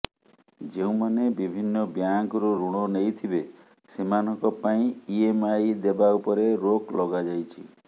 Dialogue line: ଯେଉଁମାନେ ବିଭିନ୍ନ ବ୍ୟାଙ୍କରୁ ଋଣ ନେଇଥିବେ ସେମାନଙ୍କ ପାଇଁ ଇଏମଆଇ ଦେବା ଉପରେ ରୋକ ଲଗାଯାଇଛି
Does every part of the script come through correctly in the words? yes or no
yes